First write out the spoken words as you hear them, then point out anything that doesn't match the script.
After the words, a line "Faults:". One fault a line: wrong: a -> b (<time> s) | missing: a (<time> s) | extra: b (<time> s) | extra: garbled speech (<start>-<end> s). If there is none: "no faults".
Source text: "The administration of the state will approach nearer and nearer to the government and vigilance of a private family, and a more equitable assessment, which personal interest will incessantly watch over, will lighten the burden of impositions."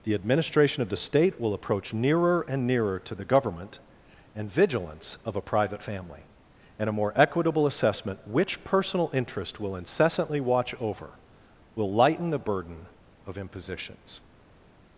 "The administration of the state will approach nearer and nearer to the government and vigilance of a private family, and a more equitable assessment, which personal interest will incessantly watch over, will lighten the burden of impositions."
Faults:
no faults